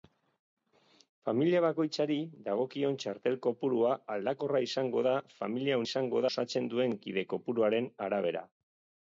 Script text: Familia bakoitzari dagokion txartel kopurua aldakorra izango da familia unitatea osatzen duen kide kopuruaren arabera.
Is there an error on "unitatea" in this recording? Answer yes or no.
yes